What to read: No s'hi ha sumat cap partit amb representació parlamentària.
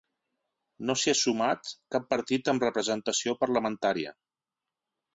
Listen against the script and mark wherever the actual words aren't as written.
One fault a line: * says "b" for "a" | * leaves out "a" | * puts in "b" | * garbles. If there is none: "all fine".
all fine